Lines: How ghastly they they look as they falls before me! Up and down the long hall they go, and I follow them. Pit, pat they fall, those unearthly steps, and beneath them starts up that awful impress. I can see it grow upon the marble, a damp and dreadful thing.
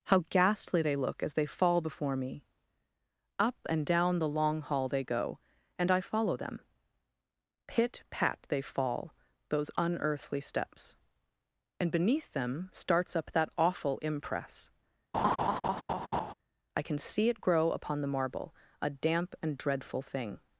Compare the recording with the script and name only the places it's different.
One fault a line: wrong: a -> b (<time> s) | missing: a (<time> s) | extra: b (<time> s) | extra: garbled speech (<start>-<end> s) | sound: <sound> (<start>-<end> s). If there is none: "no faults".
missing: they (1.0 s)
wrong: falls -> fall (1.5 s)
sound: laugh (15.1-16.3 s)